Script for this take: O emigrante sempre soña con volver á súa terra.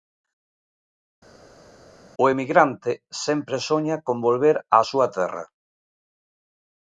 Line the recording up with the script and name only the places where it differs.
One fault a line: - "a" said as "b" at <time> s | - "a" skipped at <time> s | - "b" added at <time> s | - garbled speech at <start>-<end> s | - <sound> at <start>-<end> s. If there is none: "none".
none